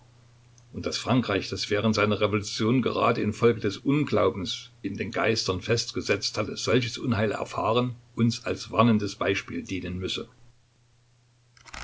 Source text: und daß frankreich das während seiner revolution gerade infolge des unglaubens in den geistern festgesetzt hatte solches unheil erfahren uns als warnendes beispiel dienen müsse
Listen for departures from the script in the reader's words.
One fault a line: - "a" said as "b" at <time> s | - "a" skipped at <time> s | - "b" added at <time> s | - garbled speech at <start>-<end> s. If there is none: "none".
none